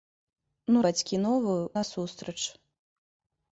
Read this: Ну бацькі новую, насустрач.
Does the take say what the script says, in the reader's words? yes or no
yes